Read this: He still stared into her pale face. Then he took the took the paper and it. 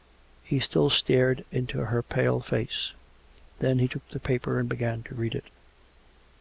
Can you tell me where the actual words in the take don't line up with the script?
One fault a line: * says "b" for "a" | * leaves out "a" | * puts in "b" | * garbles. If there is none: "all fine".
* says "paper and began to read" for "took the paper and"